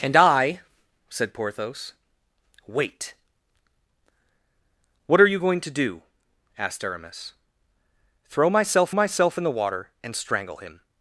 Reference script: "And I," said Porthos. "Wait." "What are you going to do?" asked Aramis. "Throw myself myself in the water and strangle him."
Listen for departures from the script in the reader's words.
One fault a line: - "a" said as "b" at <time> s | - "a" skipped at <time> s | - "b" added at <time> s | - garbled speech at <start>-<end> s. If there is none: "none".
none